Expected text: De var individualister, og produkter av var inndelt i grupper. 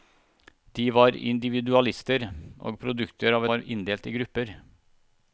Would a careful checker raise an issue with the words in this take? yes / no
no